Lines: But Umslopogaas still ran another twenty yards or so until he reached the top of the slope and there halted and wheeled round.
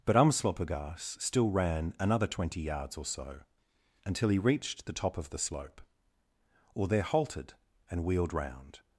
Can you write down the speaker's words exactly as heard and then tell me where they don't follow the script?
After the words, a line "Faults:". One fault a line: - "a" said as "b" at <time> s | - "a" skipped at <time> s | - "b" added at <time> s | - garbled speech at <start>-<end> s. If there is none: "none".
But Umslopogaas still ran another twenty yards or so until he reached the top of the slope or there halted and wheeled round.
Faults:
- "and" said as "or" at 6.7 s